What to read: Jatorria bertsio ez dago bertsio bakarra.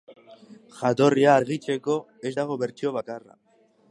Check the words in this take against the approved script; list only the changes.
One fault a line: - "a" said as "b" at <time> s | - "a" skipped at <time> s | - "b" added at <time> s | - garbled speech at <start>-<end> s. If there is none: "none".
- "bertsio" said as "argitzeko" at 1.4 s